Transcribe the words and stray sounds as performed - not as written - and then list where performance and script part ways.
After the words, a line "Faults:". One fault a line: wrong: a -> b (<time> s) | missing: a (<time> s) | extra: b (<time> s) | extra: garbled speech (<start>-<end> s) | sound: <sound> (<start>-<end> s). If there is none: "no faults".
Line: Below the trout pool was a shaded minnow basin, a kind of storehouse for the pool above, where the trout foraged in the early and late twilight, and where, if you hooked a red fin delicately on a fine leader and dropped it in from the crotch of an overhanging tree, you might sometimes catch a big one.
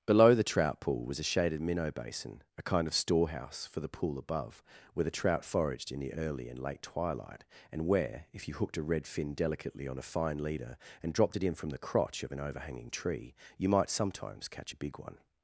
Below the trout pool was a shaded minnow basin, a kind of storehouse for the pool above, where the trout foraged in the early and late twilight, and where, if you hooked a red fin delicately on a fine leader and dropped it in from the crotch of an overhanging tree, you might sometimes catch a big one.
Faults:
no faults